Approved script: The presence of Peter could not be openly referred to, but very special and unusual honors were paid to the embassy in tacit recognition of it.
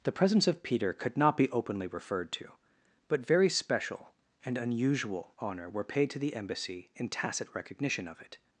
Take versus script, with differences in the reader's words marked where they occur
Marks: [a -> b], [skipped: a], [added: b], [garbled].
The presence of Peter could not be openly referred to, but very special and unusual [honors -> honor] were paid to the embassy in tacit recognition of it.